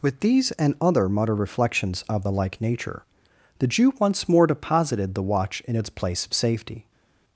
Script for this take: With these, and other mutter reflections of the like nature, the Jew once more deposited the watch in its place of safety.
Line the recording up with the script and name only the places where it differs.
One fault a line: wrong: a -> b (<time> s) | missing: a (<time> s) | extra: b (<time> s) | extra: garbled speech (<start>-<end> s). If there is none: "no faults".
no faults